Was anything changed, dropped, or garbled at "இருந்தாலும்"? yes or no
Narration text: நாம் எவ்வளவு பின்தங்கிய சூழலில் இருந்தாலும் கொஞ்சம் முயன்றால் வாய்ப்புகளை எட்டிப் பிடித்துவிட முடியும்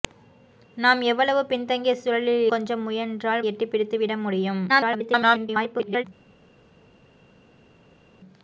yes